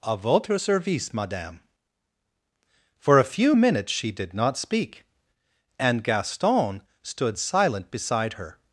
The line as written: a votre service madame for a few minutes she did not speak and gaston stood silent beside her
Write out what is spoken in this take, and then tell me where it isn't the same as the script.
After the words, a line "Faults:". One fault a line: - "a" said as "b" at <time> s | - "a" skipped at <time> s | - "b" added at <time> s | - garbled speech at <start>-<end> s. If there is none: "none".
a votre service madame for a few minutes she did not speak and gaston stood silent beside her
Faults:
none